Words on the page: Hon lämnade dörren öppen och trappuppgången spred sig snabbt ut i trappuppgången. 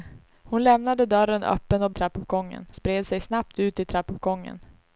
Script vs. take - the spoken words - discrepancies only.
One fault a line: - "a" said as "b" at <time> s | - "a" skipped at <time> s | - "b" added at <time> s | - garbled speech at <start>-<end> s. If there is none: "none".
none